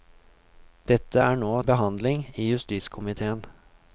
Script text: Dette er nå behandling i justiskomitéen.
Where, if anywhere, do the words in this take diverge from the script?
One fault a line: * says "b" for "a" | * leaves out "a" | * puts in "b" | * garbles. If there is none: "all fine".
all fine